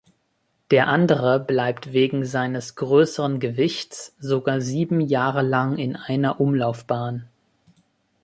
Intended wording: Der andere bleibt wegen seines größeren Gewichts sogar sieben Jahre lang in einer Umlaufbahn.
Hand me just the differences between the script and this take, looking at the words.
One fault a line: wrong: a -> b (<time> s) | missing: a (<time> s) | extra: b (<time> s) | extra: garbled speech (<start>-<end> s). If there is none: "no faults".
no faults